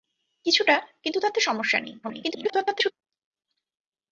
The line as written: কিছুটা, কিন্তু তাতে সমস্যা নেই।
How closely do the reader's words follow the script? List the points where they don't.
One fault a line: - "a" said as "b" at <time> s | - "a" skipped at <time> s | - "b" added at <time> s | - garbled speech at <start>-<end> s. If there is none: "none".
- garbled speech at 2.0-2.9 s